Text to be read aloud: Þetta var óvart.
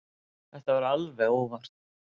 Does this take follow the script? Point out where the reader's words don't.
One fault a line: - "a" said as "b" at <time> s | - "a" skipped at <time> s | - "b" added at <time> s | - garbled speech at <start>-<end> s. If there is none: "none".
- "alveg" added at 0.9 s